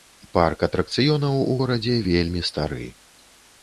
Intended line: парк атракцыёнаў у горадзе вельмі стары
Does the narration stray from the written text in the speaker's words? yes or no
no